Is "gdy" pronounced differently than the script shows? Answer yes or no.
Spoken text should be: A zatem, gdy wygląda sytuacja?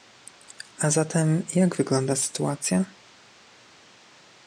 yes